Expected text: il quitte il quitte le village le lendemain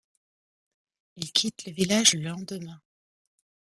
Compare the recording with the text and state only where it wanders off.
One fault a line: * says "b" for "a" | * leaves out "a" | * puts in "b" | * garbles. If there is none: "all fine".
* leaves out "il quitte"